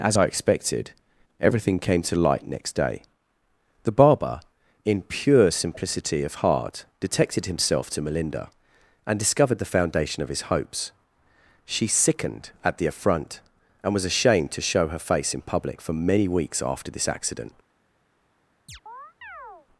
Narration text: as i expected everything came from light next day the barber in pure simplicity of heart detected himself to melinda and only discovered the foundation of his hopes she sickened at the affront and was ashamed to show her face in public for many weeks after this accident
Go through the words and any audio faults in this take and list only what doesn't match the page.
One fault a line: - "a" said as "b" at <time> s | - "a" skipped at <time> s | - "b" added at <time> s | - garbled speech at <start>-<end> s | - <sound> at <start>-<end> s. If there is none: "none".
- "from" said as "to" at 2.0 s
- "only" skipped at 9.2 s
- chirp at 18.7-19.7 s